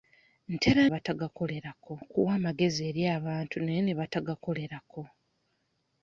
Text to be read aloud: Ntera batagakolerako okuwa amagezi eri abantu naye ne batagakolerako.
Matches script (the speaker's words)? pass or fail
pass